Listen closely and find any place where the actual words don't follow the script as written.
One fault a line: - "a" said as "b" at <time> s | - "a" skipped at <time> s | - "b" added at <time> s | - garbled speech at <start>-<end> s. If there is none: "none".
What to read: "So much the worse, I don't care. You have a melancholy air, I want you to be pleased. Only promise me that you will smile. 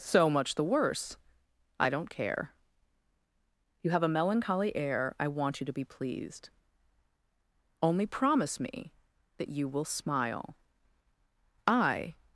- "I" added at 11.7 s